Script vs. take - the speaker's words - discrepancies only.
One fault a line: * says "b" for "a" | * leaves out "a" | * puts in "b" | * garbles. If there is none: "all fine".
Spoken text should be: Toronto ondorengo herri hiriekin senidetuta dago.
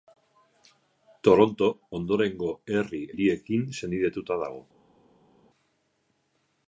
all fine